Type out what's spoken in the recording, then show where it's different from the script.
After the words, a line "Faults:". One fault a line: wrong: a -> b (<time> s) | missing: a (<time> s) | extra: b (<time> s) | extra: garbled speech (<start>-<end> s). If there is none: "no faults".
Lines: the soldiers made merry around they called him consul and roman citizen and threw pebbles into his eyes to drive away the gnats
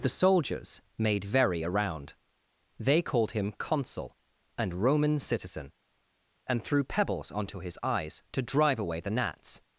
the soldiers made very around they called him consul and roman citizen and threw pebbles onto his eyes to drive away the gnats
Faults:
wrong: merry -> very (1.2 s)
wrong: into -> onto (7.3 s)